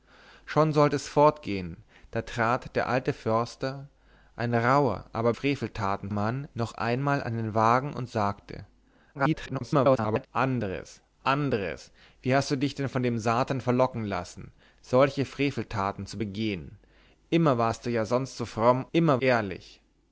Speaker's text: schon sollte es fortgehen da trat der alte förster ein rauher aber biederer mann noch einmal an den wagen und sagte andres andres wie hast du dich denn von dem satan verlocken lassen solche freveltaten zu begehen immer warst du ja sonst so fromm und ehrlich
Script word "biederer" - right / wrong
wrong